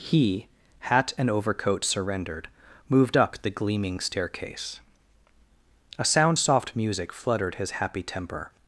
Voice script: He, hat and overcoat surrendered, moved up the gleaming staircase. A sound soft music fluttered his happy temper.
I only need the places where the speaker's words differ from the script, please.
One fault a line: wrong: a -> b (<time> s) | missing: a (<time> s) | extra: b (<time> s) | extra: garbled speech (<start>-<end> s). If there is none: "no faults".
no faults